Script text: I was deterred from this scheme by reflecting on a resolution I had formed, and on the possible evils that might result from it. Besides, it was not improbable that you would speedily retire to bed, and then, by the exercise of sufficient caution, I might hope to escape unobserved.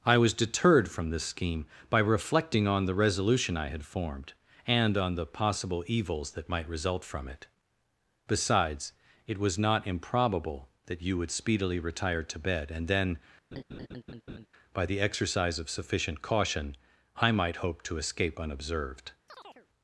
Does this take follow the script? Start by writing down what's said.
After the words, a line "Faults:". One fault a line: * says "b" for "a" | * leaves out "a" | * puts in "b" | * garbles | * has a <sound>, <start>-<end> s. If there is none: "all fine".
I was deterred from this scheme by reflecting on the resolution I had formed, and on the possible evils that might result from it. Besides, it was not improbable that you would speedily retire to bed, and then, by the exercise of sufficient caution, I might hope to escape unobserved.
Faults:
* says "the" for "a"
* has a laugh, 13.5-14.5 s
* has a chirp, 19.3-19.7 s